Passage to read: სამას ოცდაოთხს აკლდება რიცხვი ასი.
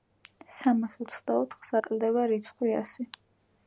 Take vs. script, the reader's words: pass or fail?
pass